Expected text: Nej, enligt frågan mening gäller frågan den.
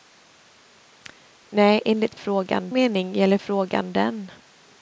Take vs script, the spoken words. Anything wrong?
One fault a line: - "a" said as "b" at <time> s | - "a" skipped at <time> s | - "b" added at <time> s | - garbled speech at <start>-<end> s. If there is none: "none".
none